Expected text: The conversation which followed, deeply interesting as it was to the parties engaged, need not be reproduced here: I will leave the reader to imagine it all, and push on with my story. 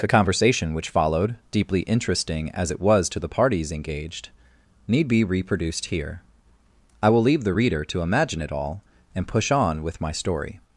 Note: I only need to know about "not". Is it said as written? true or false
false